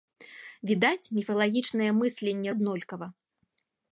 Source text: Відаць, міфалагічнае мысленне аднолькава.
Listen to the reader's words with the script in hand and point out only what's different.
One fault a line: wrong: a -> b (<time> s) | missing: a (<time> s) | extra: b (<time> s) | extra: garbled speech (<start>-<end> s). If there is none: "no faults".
no faults